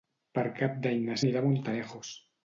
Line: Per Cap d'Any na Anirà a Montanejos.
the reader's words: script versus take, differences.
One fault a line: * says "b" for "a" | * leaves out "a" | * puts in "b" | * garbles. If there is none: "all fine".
all fine